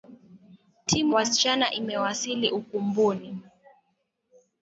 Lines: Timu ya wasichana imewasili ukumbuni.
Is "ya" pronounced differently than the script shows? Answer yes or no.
yes